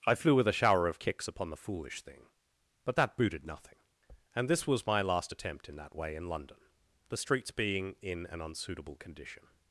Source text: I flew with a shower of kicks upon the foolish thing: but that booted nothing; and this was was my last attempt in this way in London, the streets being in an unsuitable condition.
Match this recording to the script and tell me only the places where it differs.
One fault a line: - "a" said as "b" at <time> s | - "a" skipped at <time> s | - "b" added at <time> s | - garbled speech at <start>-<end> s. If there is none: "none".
- "was" skipped at 4.9 s
- "this" said as "that" at 5.8 s